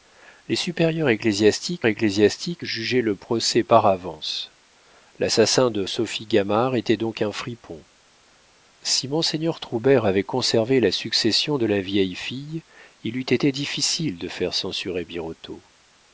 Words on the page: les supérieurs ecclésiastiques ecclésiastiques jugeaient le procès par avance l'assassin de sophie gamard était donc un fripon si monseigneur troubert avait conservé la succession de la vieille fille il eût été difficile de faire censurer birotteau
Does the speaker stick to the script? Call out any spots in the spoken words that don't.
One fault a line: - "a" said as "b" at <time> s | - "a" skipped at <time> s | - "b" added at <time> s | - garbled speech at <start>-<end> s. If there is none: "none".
none